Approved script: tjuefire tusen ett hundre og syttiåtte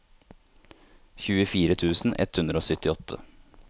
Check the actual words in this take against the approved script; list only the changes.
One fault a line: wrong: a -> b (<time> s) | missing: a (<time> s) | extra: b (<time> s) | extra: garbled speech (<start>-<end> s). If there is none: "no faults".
no faults